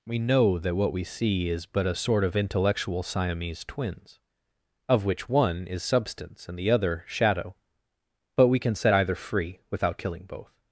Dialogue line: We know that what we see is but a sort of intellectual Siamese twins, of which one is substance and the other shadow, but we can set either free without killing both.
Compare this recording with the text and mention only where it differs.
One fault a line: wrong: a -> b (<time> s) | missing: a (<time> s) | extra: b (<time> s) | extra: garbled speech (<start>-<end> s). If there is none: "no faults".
no faults